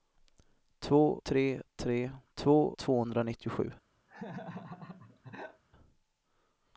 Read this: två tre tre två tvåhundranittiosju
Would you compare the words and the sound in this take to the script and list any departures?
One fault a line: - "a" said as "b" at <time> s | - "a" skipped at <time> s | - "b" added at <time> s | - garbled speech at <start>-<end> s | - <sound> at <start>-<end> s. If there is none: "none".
- laugh at 4.1-5.6 s